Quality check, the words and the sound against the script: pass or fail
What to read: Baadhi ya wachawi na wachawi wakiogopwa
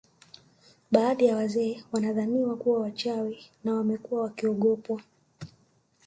fail